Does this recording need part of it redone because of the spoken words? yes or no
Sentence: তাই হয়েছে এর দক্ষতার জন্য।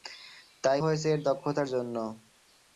no